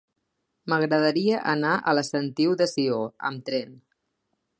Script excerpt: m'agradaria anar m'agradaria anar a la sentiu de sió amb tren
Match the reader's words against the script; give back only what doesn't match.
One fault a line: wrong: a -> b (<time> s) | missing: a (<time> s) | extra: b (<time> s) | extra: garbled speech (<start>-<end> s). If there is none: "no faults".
missing: m'agradaria anar (1.8 s)